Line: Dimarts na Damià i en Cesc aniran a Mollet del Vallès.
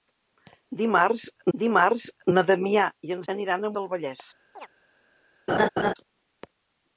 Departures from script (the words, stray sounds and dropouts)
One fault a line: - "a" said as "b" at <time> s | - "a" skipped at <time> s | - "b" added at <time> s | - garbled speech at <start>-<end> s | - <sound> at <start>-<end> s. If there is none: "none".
- "dimarts" added at 1.6 s
- "Cesc" skipped at 3.2 s
- "Mollet" skipped at 3.7 s
- chirp at 4.6-4.7 s
- laugh at 5.5-5.9 s